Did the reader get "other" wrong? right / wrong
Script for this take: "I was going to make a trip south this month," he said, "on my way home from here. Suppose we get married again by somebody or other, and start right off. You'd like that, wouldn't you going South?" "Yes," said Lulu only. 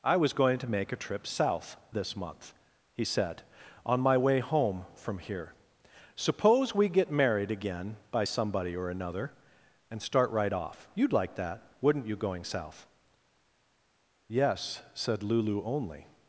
wrong